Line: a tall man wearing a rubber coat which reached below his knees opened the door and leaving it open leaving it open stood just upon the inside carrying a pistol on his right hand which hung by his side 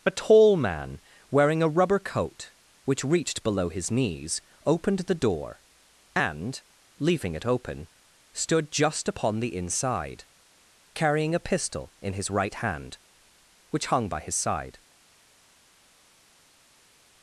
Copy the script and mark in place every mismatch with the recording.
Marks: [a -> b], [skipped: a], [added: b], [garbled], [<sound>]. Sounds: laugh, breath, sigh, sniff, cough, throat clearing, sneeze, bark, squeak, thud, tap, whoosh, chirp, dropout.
a tall man wearing a rubber coat which reached below his knees opened the door and leaving it open [skipped: leaving it open] stood just upon the inside carrying a pistol [on -> in] his right hand which hung by his side